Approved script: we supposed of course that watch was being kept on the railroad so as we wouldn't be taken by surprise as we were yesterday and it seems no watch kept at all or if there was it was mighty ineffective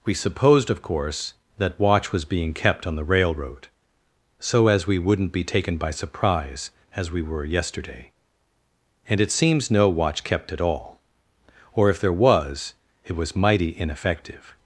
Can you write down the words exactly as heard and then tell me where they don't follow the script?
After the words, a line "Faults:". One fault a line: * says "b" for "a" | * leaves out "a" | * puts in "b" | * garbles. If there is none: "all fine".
we supposed of course that watch was being kept on the railroad so as we wouldn't be taken by surprise as we were yesterday and it seems no watch kept at all or if there was it was mighty ineffective
Faults:
all fine